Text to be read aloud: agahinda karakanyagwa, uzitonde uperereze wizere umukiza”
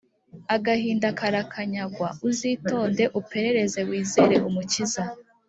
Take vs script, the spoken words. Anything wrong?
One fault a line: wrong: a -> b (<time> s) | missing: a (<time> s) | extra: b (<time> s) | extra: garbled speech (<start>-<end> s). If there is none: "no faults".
no faults